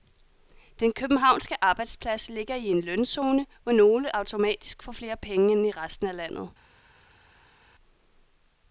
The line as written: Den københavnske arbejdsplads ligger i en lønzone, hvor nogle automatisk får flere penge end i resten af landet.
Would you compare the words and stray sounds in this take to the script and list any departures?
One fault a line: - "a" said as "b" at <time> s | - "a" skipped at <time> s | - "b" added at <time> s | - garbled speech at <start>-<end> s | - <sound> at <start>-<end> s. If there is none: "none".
none